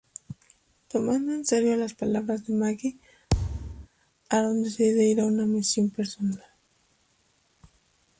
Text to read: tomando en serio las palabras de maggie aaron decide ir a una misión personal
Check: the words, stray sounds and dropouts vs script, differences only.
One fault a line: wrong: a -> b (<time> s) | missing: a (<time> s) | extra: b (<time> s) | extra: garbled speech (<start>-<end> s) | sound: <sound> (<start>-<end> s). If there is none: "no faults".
sound: thud (3.3-3.9 s)